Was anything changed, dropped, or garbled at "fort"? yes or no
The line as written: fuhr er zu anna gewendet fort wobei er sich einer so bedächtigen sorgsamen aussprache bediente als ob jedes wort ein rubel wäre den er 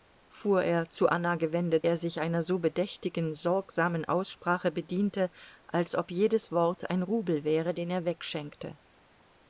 yes